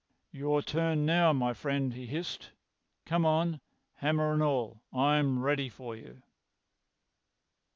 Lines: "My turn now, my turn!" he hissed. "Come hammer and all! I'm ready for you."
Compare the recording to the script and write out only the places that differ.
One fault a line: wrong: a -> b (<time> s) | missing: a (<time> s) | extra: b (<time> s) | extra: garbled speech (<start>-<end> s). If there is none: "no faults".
wrong: My -> Your (0.3 s)
wrong: turn -> friend (1.5 s)
extra: on (3.2 s)